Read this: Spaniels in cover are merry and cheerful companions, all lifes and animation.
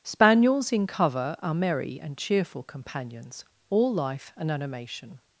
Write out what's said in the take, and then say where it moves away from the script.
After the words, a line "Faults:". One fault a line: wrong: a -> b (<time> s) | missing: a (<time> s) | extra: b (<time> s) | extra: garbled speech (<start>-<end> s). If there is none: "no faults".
Spaniels in cover are merry and cheerful companions, all life and animation.
Faults:
wrong: lifes -> life (3.9 s)